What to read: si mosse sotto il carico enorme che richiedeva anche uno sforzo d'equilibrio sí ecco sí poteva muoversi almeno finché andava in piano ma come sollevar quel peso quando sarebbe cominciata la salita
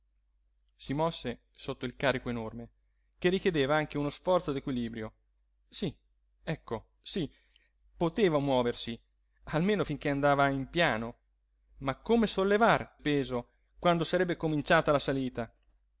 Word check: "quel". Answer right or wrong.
wrong